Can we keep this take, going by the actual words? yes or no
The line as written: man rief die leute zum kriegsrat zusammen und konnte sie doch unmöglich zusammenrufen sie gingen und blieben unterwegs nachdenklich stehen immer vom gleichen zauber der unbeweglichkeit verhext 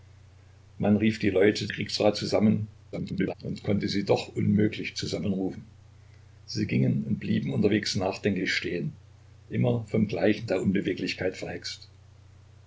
no